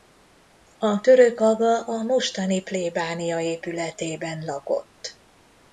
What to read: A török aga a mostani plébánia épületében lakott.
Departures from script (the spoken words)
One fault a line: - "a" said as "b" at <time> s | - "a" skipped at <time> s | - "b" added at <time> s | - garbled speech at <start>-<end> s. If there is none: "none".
none